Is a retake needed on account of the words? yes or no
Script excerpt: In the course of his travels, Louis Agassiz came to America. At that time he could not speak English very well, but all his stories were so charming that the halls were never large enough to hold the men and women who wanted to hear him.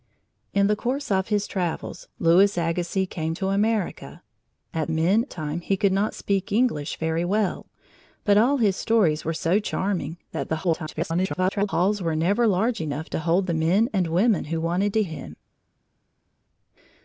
yes